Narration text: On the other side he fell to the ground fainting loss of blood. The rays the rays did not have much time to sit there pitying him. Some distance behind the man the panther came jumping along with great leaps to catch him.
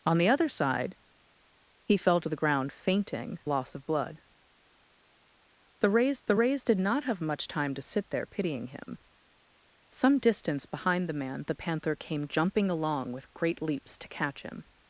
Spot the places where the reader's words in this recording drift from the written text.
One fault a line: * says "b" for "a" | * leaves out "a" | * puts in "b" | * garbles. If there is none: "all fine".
all fine